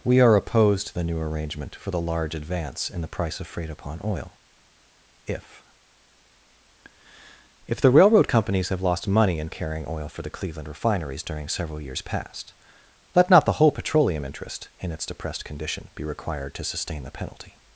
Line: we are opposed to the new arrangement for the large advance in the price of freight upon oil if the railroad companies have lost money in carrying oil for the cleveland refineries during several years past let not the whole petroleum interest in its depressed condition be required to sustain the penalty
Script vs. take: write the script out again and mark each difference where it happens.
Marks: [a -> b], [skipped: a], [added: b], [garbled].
we are opposed to the new arrangement for the large advance in the price of freight upon oil if [added: if] the railroad companies have lost money in carrying oil for the cleveland refineries during several years past let not the whole petroleum interest in its depressed condition be required to sustain the penalty